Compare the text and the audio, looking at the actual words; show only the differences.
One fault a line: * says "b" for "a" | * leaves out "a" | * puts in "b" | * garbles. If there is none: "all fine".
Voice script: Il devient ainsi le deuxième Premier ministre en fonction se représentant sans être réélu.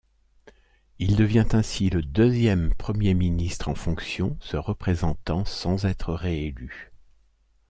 all fine